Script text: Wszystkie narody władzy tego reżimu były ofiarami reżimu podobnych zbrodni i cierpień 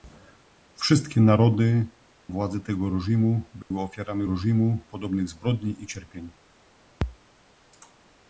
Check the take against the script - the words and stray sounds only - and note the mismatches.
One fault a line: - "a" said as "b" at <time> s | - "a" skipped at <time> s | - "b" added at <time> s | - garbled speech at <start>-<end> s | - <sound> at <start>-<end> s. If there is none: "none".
- dropout at 3.6-3.7 s